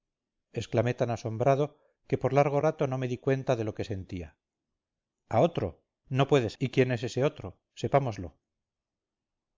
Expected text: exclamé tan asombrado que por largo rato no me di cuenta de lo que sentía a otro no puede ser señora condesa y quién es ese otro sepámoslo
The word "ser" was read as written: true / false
false